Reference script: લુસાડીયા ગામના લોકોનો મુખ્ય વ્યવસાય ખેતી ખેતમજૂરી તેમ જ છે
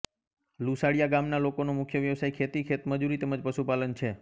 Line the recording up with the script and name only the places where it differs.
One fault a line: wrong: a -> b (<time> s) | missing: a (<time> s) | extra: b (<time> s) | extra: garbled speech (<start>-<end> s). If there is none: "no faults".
extra: પશુપાલન (3.5 s)